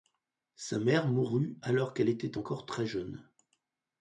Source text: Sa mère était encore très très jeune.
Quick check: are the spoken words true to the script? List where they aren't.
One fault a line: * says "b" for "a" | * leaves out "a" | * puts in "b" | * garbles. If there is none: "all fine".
* puts in "mourut alors qu'elle"
* leaves out "très"